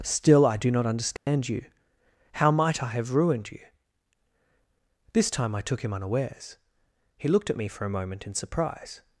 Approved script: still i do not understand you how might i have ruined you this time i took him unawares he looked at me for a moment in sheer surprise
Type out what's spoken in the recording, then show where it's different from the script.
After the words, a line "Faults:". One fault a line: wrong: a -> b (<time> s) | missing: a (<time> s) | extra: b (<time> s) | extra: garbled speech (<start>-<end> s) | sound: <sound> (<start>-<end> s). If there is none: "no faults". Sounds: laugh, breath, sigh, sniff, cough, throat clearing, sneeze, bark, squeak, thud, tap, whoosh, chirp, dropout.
still i do not understand you how might i have ruined you this time i took him unawares he looked at me for a moment in surprise
Faults:
sound: dropout (1.2-1.3 s)
missing: sheer (8.3 s)